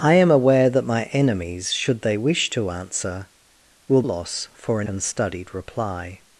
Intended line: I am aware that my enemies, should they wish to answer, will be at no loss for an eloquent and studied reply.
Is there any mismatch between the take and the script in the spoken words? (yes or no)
yes